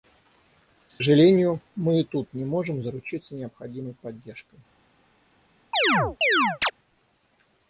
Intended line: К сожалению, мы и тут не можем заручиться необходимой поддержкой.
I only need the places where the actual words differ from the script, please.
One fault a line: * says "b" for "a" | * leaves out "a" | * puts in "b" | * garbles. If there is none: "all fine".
all fine